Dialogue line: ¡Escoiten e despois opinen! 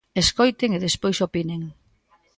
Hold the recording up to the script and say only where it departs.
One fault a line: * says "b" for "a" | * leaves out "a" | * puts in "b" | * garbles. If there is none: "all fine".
all fine